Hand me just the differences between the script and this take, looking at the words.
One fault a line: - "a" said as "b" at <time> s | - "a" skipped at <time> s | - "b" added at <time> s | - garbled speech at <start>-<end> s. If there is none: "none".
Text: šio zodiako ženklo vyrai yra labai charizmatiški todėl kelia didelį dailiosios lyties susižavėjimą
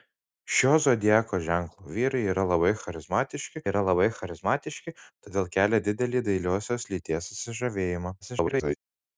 - "yra labai charizmatiški" added at 3.7 s
- garbled speech at 8.2-8.8 s